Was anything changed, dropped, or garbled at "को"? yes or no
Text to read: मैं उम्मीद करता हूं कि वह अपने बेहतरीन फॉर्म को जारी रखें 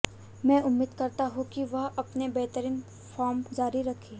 yes